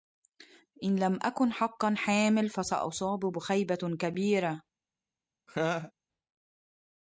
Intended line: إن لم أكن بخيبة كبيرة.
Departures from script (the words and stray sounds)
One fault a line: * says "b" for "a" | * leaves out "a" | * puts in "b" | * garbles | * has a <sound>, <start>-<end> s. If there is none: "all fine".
* puts in "حقا حامل فسأصاب"
* has a laugh, 5.5-5.9 s